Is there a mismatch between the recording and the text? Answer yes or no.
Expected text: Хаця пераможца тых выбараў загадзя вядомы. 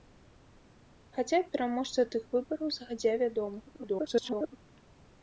yes